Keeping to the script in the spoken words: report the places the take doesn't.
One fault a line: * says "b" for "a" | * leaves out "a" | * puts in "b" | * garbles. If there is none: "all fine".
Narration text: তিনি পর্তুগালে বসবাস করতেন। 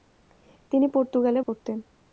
* leaves out "বসবাস"